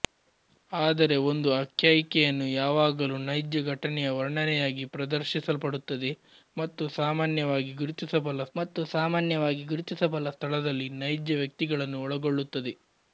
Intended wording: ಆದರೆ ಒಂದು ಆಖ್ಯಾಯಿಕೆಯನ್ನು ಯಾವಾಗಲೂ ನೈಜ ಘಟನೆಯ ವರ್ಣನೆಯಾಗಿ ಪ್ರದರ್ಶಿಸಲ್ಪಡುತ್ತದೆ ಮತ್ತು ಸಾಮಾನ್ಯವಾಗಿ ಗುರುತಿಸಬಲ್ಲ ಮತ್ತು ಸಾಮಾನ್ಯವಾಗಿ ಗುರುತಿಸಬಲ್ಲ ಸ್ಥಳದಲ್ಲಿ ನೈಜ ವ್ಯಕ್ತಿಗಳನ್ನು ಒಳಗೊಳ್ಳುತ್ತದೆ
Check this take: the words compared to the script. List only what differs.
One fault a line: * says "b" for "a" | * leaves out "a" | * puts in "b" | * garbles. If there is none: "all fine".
all fine